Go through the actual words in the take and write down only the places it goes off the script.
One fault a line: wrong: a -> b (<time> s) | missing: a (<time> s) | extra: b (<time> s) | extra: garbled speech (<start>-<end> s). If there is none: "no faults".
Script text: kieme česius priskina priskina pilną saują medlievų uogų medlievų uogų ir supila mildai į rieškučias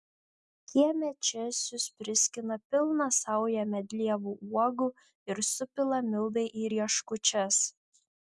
missing: priskina (2.6 s)
missing: medlievų uogų (4.9 s)